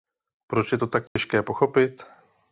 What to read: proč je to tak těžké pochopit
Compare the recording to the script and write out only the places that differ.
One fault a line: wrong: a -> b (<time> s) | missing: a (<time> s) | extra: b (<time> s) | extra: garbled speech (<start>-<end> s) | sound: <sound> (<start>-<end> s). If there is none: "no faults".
sound: dropout (1.1-1.2 s)